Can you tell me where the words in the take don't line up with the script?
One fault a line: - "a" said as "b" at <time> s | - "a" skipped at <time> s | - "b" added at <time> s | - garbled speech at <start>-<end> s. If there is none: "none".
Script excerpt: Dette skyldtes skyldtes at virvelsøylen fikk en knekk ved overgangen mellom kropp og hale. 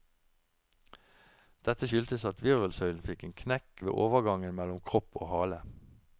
- "skyldtes" skipped at 2.2 s